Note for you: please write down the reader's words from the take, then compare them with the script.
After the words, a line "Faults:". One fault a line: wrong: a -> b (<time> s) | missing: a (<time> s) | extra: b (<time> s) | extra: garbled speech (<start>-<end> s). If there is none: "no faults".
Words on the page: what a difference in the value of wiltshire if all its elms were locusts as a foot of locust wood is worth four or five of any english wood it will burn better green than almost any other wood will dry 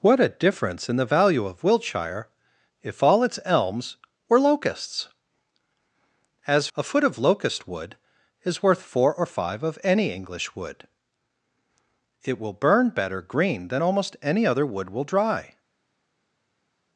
what a difference in the value of wiltshire if all its elms were locusts as a foot of locust wood is worth four or five of any english wood it will burn better green than almost any other wood will dry
Faults:
no faults